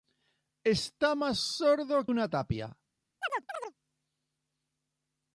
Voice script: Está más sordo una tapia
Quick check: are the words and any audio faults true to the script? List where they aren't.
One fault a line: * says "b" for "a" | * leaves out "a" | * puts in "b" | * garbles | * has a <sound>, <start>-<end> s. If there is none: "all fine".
* has a chirp, 3.2-3.7 s